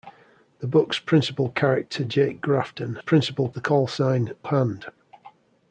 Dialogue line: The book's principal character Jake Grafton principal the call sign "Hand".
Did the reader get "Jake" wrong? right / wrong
right